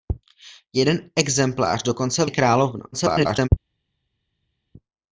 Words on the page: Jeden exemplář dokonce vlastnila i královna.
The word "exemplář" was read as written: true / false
true